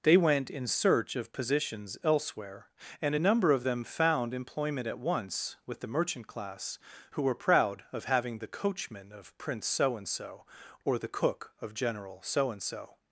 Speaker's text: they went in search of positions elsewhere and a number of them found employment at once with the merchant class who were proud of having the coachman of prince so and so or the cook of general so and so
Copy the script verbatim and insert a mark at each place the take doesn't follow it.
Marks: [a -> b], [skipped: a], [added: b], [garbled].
they went in search of positions elsewhere and a number of them found employment at once with the merchant class who were proud of having the coachman of prince so and so or the cook of general so and so